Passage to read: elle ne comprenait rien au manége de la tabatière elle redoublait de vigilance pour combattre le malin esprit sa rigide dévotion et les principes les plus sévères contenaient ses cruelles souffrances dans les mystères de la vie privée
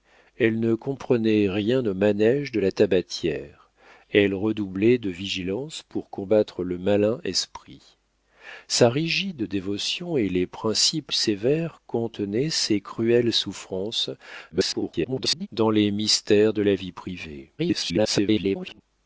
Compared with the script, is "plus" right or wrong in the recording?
wrong